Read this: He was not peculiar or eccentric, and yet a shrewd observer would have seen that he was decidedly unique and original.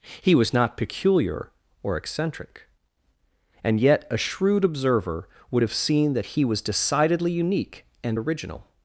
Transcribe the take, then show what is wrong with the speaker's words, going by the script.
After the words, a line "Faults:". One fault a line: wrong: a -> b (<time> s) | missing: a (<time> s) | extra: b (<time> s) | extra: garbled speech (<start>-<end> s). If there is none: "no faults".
He was not peculiar or eccentric, and yet a shrewd observer would have seen that he was decidedly unique and original.
Faults:
no faults